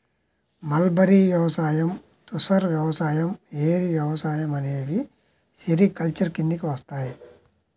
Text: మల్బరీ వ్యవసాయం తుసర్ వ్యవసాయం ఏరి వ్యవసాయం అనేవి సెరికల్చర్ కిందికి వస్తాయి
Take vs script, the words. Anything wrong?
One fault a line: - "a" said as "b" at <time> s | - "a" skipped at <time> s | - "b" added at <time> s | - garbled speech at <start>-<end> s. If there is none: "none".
none